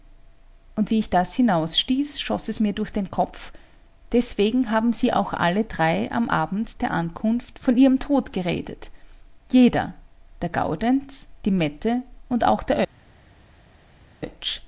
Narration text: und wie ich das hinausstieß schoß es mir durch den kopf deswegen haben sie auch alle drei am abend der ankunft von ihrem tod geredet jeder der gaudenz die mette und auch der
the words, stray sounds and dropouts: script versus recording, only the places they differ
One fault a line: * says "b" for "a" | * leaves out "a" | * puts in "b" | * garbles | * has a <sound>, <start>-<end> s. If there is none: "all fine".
all fine